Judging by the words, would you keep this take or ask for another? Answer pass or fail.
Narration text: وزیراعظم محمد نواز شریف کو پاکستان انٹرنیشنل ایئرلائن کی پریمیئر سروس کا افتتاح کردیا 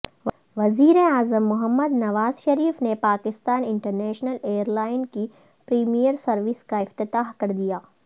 fail